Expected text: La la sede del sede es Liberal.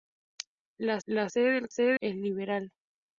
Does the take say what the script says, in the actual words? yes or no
yes